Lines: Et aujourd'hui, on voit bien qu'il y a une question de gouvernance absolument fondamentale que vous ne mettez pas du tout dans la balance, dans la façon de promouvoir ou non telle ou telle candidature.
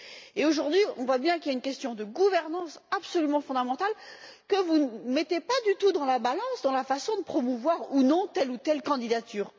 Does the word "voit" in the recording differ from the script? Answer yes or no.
no